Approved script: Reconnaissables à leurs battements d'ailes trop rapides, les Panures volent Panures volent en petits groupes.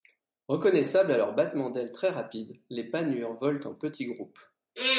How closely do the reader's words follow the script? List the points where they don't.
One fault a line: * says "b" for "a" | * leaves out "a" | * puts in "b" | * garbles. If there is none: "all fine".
* says "très" for "trop"
* leaves out "Panures volent"